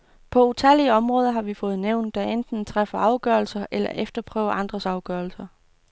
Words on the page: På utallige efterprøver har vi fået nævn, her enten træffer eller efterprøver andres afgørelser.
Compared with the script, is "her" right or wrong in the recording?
wrong